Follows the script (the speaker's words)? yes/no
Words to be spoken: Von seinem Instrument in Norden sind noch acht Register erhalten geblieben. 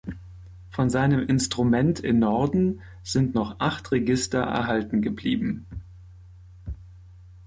yes